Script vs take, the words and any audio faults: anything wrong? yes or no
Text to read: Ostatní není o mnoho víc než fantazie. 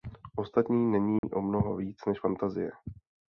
yes